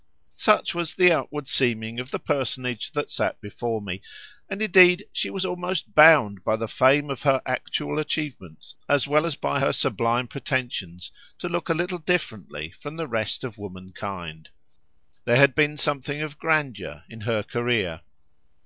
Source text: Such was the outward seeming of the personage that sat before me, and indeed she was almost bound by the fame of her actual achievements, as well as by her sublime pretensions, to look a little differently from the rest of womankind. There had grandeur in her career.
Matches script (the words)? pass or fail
fail